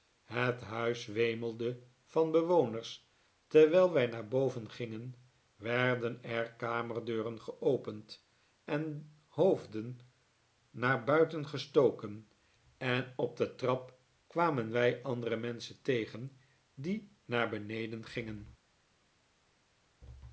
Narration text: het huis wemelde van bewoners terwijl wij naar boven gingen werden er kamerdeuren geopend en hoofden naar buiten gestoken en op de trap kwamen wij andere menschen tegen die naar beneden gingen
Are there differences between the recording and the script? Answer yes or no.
no